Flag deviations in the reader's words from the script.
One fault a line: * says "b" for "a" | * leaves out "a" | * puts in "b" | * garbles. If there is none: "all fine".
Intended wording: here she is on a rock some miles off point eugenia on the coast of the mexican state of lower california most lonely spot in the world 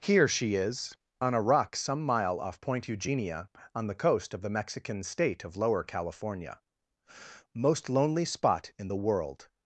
* says "mile" for "miles"